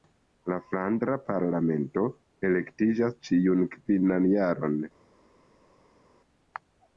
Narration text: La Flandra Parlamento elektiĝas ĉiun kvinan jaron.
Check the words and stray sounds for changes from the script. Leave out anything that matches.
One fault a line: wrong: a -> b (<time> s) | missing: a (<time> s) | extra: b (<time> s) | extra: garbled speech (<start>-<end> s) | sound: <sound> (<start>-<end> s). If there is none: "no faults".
no faults